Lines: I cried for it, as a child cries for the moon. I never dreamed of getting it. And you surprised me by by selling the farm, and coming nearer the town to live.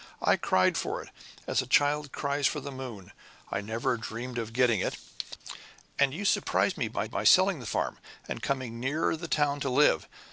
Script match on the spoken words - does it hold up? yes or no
yes